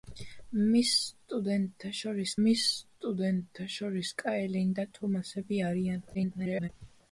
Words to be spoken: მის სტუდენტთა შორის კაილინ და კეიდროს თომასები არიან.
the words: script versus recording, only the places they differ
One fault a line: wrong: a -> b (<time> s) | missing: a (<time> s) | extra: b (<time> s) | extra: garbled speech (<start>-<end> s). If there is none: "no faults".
extra: მის სტუდენტთა შორის (2.4 s)
missing: კეიდროს (4.9 s)
extra: garbled speech (6.1-6.7 s)